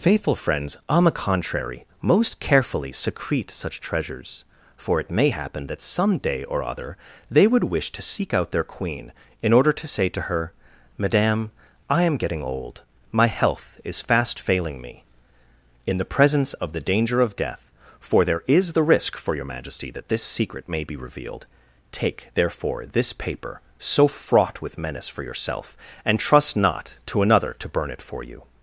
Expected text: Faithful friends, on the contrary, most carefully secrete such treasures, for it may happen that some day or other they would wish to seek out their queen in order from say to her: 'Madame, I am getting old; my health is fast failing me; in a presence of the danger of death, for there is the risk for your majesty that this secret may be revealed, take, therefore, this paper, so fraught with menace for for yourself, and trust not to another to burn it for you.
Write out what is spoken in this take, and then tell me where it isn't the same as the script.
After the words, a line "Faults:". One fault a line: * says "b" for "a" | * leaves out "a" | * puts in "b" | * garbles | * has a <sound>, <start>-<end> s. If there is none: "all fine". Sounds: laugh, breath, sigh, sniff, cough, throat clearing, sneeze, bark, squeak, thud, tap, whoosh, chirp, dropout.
Faithful friends, on the contrary, most carefully secrete such treasures, for it may happen that some day or other they would wish to seek out their queen in order to say to her: 'Madame, I am getting old; my health is fast failing me; in the presence of the danger of death, for there is the risk for your majesty that this secret may be revealed, take, therefore, this paper, so fraught with menace for yourself, and trust not to another to burn it for you.
Faults:
* says "to" for "from"
* says "the" for "a"
* leaves out "for"